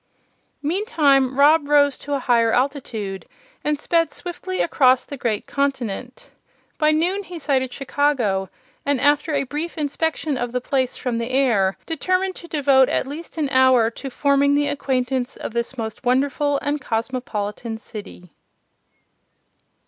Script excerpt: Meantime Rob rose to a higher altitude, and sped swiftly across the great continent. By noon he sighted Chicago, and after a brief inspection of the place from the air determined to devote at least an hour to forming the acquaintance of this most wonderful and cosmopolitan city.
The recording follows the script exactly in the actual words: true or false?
true